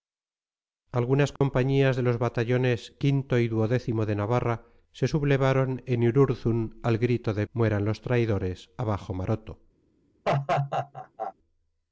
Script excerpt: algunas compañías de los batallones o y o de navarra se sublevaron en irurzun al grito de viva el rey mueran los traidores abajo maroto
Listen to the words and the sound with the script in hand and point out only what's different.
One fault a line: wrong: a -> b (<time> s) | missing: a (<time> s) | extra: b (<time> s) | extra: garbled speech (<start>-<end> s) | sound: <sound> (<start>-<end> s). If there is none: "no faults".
sound: dropout (1.4-1.4 s)
missing: viva el rey (7.5 s)
sound: laugh (10.2-11.3 s)